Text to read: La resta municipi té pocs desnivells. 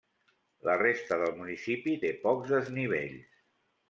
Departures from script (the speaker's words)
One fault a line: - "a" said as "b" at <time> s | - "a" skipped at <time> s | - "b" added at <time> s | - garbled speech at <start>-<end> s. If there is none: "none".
- "del" added at 1.2 s